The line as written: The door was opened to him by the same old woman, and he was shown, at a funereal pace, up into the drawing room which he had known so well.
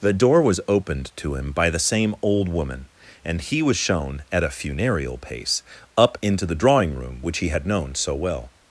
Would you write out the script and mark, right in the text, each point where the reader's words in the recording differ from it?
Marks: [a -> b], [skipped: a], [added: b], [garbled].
The door was opened to him by the same old woman, and he was shown, at a funereal pace, up into the drawing room which he had known so well.